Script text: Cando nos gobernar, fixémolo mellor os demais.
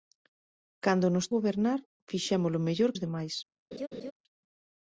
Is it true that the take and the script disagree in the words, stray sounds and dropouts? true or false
true